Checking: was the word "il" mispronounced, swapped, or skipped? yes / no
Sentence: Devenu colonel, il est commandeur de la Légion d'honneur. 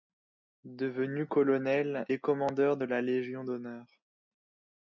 yes